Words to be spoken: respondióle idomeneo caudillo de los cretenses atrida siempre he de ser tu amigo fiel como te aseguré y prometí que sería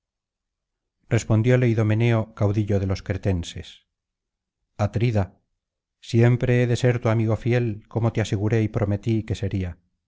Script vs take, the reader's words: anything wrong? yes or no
no